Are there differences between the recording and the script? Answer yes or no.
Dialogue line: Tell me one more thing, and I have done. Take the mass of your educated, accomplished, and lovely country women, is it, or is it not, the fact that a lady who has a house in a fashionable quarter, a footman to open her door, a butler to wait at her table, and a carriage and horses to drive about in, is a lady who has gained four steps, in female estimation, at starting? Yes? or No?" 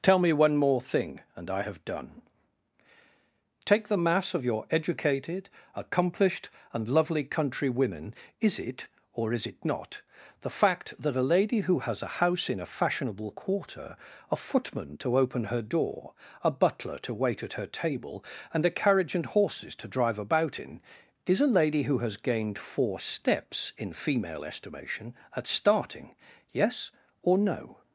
no